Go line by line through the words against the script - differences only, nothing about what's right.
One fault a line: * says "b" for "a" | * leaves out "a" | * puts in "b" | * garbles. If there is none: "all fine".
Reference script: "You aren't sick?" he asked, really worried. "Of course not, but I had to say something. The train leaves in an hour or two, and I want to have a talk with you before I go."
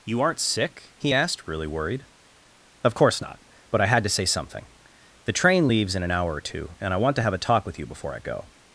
all fine